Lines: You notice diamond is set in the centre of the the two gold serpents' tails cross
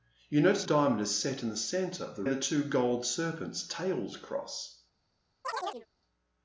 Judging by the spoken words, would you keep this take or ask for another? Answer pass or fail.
pass